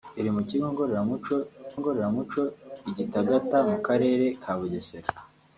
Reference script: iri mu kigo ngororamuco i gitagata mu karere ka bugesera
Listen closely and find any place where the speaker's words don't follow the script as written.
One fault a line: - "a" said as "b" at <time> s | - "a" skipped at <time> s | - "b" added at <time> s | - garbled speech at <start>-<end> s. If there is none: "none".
- "ngororamuco" added at 1.8 s